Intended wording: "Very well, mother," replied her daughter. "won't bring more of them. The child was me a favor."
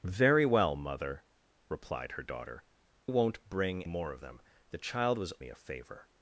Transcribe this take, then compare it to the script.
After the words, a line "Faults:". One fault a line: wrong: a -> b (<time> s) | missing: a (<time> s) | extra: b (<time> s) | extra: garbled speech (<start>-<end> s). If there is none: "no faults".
"Very well, mother," replied her daughter. "won't bring more of them. The child was me a favor."
Faults:
no faults